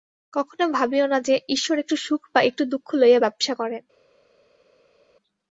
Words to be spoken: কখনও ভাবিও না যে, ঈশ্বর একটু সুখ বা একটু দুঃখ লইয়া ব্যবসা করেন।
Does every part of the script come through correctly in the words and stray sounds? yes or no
yes